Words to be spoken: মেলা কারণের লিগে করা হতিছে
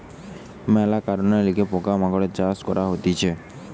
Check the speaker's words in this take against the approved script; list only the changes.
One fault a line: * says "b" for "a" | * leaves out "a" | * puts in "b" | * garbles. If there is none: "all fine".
* puts in "পোকা মাকড়ের চাষ"